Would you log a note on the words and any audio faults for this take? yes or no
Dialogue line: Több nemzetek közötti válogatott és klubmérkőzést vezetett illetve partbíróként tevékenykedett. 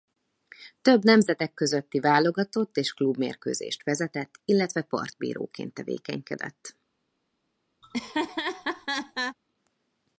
yes